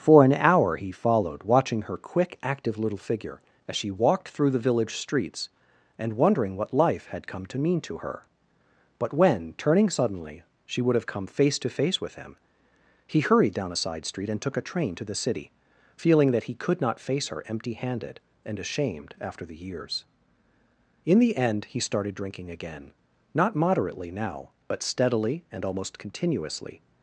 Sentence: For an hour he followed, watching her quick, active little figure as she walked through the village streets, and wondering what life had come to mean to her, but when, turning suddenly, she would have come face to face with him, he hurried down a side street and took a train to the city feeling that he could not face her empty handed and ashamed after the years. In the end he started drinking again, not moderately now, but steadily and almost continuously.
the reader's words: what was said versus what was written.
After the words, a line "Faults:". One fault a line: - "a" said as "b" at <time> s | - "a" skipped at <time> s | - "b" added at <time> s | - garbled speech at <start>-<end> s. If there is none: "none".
For an hour he followed, watching her quick, active little figure as she walked through the village streets, and wondering what life had come to mean to her, but when, turning suddenly, she would have come face to face with him, he hurried down a side street and took a train to the city feeling that he could not face her empty handed and ashamed after the years. In the end he started drinking again, not moderately now, but steadily and almost continuously.
Faults:
none